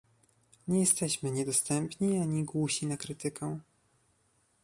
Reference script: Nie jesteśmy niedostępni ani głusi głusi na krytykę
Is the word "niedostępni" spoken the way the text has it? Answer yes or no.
yes